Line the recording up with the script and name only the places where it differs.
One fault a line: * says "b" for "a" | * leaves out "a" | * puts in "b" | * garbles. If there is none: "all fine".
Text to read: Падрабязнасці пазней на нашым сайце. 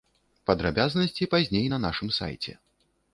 all fine